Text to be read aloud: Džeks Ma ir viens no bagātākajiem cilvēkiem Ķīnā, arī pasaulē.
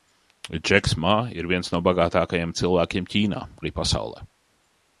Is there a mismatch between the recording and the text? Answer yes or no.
no